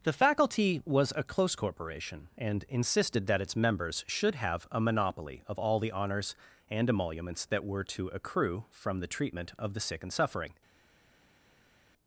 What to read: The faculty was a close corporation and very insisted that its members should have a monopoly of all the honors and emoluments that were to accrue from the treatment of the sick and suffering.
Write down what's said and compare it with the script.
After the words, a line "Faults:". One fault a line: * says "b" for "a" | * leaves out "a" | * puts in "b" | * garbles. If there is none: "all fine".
The faculty was a close corporation and insisted that its members should have a monopoly of all the honors and emoluments that were to accrue from the treatment of the sick and suffering.
Faults:
* leaves out "very"